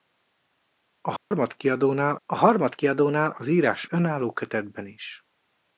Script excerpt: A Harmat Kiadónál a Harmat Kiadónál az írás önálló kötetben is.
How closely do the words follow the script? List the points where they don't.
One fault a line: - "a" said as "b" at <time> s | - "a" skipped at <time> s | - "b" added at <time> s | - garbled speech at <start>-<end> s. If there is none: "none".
none